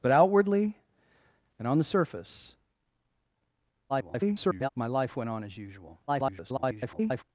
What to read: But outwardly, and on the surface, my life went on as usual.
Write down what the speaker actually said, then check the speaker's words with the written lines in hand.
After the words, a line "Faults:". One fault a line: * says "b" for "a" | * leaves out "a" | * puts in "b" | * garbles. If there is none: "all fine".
But outwardly, and on the surface, [garbled] my life went on as usual. [garbled]
Faults:
* garbles
* garbles